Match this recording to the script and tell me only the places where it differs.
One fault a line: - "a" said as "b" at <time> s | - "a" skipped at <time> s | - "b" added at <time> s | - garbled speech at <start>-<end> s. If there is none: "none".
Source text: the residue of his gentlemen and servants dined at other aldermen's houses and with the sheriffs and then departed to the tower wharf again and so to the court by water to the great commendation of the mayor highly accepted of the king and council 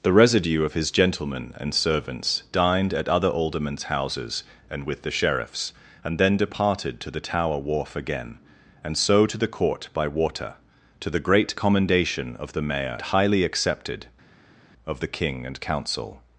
none